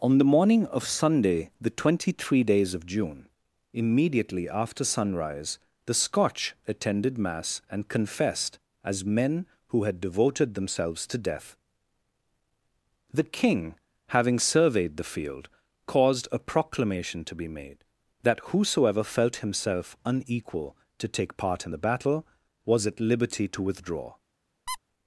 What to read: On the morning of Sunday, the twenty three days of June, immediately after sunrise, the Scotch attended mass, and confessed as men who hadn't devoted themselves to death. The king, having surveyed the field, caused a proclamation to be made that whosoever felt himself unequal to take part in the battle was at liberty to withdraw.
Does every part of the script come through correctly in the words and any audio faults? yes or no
no